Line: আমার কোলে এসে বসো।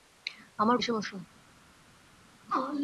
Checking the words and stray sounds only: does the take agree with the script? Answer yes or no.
no